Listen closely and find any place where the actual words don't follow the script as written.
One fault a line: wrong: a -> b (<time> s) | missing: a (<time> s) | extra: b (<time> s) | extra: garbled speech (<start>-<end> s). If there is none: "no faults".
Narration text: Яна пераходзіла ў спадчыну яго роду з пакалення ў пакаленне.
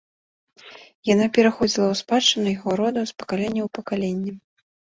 no faults